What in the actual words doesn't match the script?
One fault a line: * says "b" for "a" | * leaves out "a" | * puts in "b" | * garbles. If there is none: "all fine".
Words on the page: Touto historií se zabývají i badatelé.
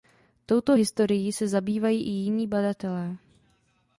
* puts in "jiní"